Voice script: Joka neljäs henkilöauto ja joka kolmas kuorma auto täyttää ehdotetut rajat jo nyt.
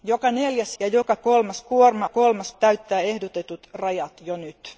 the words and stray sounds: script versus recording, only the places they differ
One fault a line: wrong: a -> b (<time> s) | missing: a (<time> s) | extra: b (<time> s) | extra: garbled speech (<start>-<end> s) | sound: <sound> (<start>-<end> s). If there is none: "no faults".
missing: henkilöauto (0.8 s)
wrong: auto -> kolmas (2.1 s)